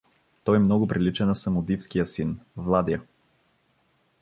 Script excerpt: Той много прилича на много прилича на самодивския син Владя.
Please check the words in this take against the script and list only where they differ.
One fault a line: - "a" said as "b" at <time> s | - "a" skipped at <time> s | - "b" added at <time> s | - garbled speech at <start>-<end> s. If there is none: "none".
- "много прилича на" skipped at 1.4 s